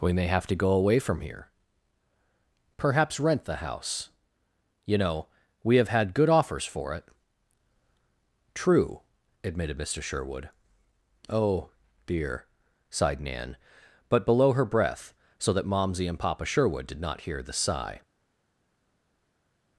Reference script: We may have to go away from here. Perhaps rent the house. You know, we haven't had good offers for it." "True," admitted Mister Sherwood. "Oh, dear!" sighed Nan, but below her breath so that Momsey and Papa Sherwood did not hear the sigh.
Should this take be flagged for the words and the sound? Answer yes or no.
yes